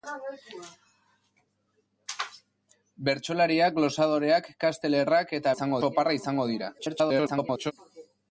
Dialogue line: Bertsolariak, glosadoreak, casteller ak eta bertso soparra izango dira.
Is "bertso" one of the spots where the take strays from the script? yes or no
yes